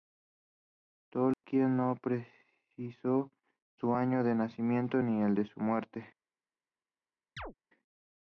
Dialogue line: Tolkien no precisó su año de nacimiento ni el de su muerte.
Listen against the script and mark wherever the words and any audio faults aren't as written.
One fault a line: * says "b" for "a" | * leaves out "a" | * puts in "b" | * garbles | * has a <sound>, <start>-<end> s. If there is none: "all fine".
* has a dropout, 1.3-1.4 s
* has a chirp, 7.4-7.5 s